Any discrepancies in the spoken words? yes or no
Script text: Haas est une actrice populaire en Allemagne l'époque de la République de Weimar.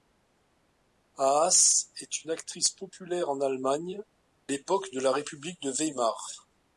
no